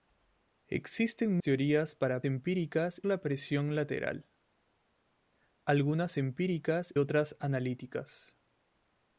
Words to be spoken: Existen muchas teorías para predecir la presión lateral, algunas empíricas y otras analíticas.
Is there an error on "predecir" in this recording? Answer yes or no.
yes